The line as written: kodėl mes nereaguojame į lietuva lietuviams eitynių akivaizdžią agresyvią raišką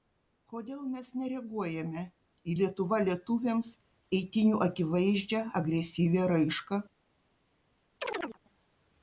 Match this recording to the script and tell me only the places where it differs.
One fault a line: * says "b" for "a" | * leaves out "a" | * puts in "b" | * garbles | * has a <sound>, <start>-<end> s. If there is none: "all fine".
* has a chirp, 8.0-8.4 s